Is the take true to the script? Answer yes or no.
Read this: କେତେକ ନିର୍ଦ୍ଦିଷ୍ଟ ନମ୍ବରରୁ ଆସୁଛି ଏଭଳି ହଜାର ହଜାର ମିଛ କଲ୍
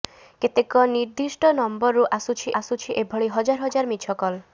no